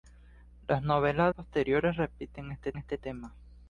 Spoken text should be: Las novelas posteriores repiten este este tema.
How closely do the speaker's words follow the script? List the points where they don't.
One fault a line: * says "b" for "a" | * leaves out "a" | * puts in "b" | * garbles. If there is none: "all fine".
all fine